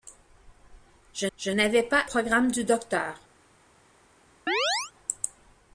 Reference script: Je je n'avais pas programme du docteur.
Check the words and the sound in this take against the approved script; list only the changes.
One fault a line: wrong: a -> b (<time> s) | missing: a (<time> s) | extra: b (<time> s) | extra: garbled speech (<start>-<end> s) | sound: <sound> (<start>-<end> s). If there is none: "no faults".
sound: chirp (4.5-4.9 s)